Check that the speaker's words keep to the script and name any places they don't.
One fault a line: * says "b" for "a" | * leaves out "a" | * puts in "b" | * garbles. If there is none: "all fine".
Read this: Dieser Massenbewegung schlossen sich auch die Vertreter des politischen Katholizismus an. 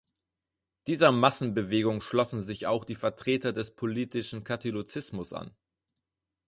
all fine